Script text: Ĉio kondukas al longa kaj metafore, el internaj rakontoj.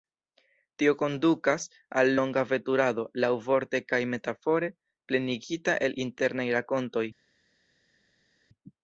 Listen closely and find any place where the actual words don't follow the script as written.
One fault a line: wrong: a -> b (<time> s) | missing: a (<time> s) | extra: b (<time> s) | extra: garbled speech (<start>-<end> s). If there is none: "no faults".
wrong: Ĉio -> Tio (0.8 s)
extra: veturado laŭvorte (2.5 s)
extra: plenigita (5.1 s)